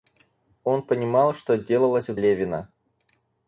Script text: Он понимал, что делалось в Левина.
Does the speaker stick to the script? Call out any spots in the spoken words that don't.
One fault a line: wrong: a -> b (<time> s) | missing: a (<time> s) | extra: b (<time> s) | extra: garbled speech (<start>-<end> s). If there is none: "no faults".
no faults